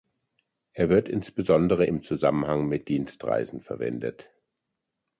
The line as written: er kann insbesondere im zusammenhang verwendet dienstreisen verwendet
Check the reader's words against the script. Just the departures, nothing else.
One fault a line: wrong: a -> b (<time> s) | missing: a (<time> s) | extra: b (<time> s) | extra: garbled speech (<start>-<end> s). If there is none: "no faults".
wrong: kann -> wird (0.9 s)
wrong: verwendet -> mit (2.7 s)